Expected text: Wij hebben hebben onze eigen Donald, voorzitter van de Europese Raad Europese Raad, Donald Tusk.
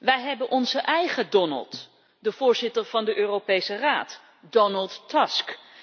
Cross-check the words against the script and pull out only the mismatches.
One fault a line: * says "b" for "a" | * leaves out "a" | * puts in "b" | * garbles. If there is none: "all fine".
* leaves out "hebben"
* puts in "de"
* leaves out "Europese Raad"